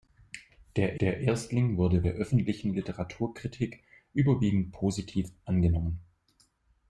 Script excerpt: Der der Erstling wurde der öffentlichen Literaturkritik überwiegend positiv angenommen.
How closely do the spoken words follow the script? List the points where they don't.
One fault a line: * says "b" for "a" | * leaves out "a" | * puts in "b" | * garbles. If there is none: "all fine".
all fine